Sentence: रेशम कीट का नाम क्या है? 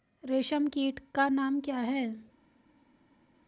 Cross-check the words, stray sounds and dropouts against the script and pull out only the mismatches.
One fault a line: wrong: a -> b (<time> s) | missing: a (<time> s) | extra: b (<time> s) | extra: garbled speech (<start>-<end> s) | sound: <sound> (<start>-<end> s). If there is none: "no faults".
no faults